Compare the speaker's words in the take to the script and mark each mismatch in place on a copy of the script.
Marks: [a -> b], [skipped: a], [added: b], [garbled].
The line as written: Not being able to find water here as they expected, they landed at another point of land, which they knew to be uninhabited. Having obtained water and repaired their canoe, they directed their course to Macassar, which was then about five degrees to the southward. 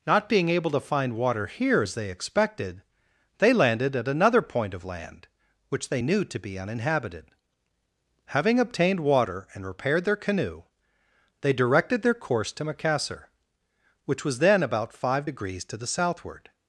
Not being able to find water here as they expected, they landed at another point of land, which they knew to be uninhabited. Having obtained water and repaired their canoe, they directed their course to Macassar, which was then about five degrees to the southward.